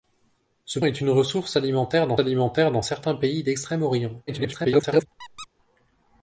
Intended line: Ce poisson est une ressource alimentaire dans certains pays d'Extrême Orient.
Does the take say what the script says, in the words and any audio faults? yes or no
no